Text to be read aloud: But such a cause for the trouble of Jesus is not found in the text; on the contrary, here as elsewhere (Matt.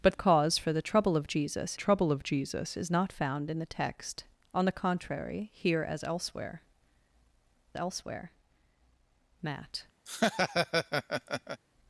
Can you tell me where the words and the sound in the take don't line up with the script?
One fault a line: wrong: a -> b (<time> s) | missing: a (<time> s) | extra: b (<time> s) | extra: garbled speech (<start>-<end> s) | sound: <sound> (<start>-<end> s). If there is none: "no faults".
missing: such (0.2 s)
extra: trouble of Jesus (1.7 s)
extra: elsewhere (7.8 s)
sound: laugh (10.1-11.6 s)